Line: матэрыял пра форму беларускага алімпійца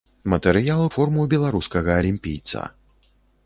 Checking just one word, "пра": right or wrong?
wrong